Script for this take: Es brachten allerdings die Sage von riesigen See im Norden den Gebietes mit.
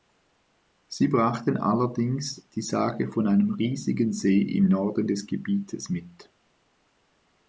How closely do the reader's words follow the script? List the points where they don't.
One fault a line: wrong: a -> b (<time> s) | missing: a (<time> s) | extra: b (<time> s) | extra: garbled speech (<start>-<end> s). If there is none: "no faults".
wrong: Es -> Sie (0.9 s)
extra: einem (3.3 s)
wrong: den -> des (5.0 s)